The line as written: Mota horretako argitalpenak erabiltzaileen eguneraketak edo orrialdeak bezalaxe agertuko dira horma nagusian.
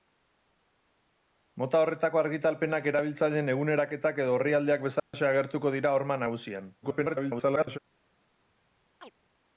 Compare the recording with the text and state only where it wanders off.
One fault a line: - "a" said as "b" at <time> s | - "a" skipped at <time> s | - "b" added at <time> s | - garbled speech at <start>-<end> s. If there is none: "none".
- garbled speech at 6.8-7.8 s